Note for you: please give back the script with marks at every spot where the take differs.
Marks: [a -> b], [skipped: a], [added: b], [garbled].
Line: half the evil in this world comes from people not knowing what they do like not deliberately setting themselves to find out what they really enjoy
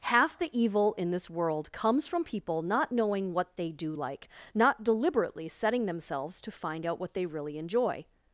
half the evil in this world comes from people not knowing what they do like not deliberately setting themselves to find out what they really enjoy